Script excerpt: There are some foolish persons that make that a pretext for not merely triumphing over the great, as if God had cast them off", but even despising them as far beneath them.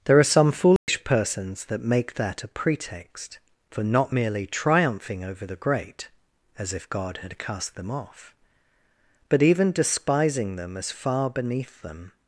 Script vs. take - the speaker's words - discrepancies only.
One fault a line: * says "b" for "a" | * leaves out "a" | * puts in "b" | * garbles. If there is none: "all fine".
all fine